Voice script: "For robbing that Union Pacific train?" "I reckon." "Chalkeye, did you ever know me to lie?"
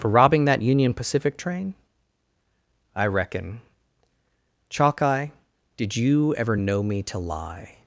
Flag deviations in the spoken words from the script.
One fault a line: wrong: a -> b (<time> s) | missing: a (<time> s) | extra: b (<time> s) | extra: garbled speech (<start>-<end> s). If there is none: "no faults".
no faults